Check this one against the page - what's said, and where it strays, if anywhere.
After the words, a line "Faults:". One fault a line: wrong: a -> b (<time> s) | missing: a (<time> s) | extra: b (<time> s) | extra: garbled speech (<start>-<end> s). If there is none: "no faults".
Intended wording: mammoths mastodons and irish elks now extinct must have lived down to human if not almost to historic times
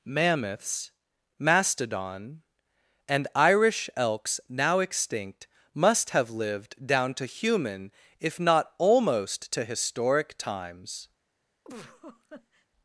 mammoths mastodon and irish elks now extinct must have lived down to human if not almost to historic times
Faults:
wrong: mastodons -> mastodon (1.4 s)